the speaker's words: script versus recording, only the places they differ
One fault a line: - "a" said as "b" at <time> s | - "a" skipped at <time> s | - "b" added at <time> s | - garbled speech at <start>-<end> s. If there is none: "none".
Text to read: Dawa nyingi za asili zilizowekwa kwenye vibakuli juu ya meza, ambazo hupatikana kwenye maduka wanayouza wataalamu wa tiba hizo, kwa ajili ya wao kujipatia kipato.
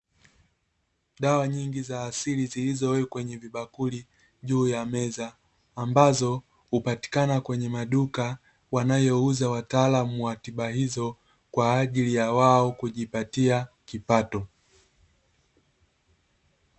none